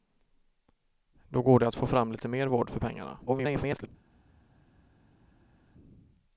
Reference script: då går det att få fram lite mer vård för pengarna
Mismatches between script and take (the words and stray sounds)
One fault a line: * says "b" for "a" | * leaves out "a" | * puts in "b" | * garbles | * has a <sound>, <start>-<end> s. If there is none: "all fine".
* garbles